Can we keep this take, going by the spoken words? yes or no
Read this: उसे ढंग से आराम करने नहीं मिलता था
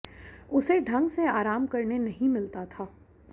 yes